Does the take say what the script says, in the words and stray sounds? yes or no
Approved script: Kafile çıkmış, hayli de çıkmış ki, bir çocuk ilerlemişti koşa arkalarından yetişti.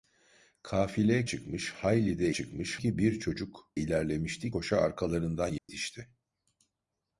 no